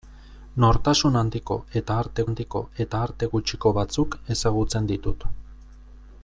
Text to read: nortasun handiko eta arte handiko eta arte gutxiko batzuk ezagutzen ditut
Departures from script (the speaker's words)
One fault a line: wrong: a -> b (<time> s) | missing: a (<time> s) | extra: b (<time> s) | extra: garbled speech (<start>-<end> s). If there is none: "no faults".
no faults